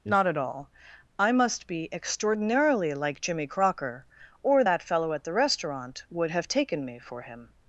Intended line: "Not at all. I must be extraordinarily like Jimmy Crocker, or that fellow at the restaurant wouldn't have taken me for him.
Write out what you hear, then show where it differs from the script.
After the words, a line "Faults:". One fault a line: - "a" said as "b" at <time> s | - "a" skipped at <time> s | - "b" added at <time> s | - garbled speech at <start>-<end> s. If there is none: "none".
"Not at all. I must be extraordinarily like Jimmy Crocker, or that fellow at the restaurant would have taken me for him.
Faults:
- "wouldn't" said as "would" at 6.1 s